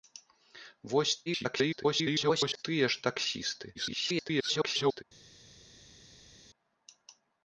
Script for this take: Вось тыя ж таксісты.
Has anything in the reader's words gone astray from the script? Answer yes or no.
yes